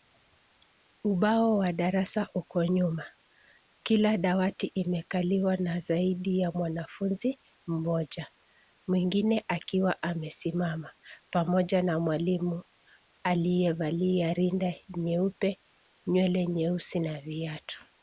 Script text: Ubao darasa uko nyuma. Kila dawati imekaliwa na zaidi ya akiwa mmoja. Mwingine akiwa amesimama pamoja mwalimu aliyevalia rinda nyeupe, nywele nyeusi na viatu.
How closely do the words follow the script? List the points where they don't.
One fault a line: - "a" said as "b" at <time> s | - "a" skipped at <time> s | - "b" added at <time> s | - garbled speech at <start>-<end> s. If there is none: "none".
- "wa" added at 1.6 s
- "akiwa" said as "mwanafunzi" at 6.5 s
- "na" added at 11.8 s